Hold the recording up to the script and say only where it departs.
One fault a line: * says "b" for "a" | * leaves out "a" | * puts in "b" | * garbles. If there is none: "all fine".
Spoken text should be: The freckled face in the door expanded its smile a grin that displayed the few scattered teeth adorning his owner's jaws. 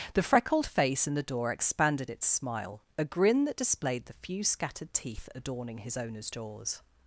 all fine